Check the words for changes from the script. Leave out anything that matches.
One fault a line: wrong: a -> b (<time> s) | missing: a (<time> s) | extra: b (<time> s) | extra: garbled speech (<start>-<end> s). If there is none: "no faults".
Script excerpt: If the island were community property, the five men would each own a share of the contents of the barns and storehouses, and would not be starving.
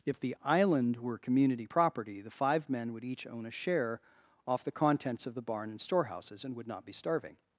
wrong: of -> off (4.5 s)
wrong: barns -> barn (5.4 s)